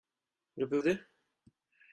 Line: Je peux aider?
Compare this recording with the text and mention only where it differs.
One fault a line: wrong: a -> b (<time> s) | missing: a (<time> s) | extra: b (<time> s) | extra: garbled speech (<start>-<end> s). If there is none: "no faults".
no faults